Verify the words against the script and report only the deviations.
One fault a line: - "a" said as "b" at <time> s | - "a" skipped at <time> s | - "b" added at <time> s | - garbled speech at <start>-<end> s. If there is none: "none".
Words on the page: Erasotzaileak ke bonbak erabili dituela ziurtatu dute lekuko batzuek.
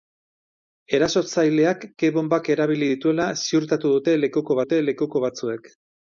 - "dute lekuko" added at 4.6 s